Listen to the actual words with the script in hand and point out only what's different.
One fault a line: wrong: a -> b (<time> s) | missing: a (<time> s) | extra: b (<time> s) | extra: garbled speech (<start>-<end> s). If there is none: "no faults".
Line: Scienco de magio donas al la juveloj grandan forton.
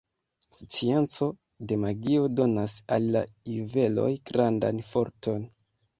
no faults